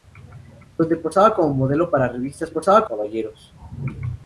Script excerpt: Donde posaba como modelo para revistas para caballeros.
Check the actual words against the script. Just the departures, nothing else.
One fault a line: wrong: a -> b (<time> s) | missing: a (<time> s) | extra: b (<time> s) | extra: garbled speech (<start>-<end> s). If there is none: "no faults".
wrong: para -> posaba (2.5 s)